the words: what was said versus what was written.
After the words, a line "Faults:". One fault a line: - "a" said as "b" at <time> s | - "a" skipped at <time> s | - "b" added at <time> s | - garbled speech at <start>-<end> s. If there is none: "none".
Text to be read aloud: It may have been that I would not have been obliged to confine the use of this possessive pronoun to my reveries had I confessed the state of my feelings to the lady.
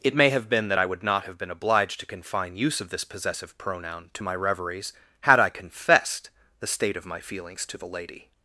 It may have been that I would not have been obliged to confine use of this possessive pronoun to my reveries had I confessed the state of my feelings to the lady.
Faults:
- "the" skipped at 2.6 s